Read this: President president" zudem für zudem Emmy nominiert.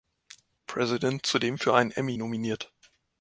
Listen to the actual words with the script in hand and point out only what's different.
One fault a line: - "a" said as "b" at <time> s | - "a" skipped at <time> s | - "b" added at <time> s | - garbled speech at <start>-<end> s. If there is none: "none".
- "president" skipped at 1.2 s
- "zudem" said as "einen" at 1.8 s